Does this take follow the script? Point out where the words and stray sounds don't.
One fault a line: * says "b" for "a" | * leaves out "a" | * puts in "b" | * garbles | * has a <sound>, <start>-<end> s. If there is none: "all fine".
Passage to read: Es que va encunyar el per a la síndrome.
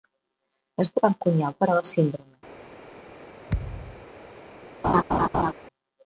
* has a thud, 3.5-4.1 s
* has a laugh, 4.8-5.5 s